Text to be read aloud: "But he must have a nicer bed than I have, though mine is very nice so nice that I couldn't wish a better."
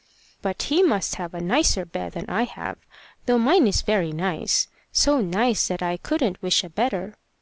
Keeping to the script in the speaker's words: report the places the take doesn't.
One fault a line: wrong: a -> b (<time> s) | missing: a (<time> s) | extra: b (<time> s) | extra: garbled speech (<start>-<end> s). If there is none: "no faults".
no faults